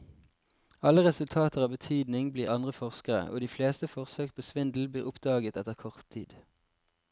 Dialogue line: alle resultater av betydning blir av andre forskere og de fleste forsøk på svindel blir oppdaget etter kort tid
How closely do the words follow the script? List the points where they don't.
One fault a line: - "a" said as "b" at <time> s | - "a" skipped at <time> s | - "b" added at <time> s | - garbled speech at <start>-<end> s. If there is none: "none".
none